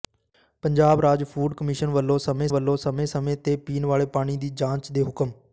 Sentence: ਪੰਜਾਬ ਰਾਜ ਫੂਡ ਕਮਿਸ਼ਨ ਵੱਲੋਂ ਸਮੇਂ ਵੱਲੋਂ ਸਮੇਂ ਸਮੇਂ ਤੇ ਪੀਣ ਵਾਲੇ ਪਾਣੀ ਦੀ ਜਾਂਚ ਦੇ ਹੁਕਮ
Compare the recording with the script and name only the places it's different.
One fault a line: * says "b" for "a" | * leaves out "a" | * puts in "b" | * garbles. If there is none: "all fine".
all fine